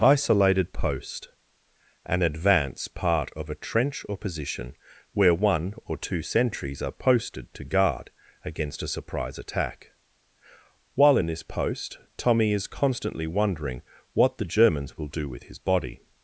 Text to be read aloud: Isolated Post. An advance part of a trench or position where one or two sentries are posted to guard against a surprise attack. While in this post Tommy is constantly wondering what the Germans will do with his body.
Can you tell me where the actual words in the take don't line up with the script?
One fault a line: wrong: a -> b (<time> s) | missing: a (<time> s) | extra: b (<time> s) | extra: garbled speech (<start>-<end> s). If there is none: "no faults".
no faults